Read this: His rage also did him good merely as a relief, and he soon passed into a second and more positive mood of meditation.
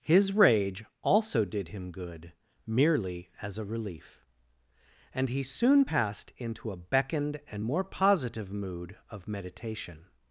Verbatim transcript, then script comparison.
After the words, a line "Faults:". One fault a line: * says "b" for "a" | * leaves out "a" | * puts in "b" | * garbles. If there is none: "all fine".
His rage also did him good merely as a relief, and he soon passed into a beckoned and more positive mood of meditation.
Faults:
* says "beckoned" for "second"